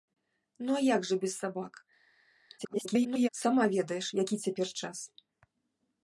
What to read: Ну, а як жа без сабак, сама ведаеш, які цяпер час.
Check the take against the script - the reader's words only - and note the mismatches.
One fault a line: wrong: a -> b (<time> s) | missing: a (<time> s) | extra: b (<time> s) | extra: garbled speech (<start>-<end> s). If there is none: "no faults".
extra: garbled speech (2.6-3.3 s)